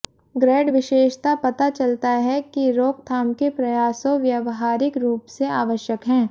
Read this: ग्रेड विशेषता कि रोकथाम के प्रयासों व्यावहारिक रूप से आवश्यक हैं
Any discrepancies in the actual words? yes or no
yes